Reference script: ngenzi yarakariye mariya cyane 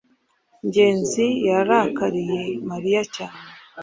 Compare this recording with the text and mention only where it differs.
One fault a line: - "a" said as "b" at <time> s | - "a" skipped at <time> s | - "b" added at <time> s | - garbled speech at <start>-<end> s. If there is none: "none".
none